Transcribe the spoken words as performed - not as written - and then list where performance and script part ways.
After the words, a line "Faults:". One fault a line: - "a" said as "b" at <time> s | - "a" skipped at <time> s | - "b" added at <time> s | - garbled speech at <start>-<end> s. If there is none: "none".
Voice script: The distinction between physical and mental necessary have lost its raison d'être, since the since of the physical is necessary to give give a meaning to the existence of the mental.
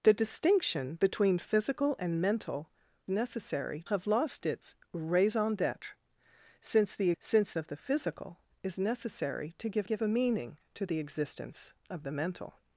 The distinction between physical and mental necessary have lost its raison d'être, since the since of the physical is necessary to give give a meaning to the existence of the mental.
Faults:
none